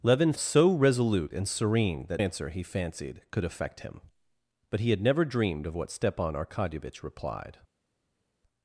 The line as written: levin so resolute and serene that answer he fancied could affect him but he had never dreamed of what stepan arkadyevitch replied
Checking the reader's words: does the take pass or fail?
pass